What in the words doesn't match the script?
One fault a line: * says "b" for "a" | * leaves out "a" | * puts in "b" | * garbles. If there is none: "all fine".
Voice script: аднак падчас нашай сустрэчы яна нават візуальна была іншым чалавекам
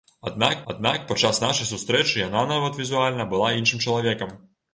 * puts in "аднак"